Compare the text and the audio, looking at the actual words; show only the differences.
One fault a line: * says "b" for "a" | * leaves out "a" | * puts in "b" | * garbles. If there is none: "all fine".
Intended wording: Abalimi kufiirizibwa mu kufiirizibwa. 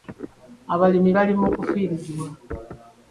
* says "bali" for "kufiirizibwa"